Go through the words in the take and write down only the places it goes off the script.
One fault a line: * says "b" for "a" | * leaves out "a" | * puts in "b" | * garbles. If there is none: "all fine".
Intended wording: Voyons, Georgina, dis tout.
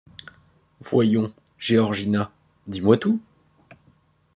* puts in "moi"